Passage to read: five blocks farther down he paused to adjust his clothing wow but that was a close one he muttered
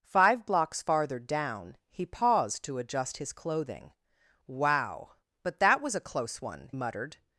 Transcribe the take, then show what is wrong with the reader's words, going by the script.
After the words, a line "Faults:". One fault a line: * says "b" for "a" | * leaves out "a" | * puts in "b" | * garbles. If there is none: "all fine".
five blocks farther down he paused to adjust his clothing wow but that was a close one muttered
Faults:
* leaves out "he"